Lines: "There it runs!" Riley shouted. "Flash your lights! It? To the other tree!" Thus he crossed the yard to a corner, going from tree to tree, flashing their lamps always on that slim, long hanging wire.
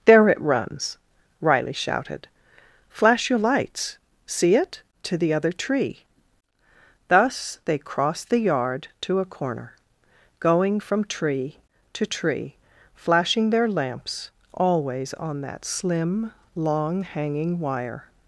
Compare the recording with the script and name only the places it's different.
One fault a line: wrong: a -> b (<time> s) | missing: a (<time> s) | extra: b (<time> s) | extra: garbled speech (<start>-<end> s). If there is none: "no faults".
extra: See (4.2 s)
wrong: he -> they (7.7 s)